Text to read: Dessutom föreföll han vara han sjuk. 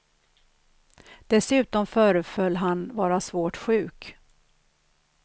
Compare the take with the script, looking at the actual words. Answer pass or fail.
fail